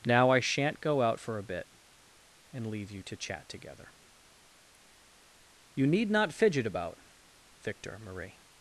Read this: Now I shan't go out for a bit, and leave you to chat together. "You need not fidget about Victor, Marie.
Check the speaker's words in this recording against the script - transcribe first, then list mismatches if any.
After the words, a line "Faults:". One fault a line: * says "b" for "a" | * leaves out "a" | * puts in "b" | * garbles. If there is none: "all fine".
Now I shan't go out for a bit, and leave you to chat together. "You need not fidget about Victor, Marie.
Faults:
all fine